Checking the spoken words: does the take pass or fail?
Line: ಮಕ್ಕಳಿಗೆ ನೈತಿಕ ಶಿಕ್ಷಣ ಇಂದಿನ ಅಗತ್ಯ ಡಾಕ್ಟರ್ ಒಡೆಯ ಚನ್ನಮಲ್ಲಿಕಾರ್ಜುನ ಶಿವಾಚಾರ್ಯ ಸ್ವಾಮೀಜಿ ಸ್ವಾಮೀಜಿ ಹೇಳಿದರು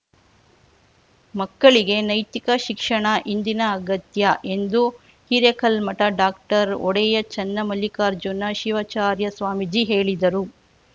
fail